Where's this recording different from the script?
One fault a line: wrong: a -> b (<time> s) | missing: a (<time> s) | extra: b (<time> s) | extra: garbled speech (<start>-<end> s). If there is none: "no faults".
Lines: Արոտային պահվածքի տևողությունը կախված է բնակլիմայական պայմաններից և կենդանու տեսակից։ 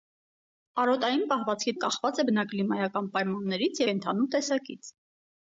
missing: տևողությունը (1.7 s)
missing: և (3.8 s)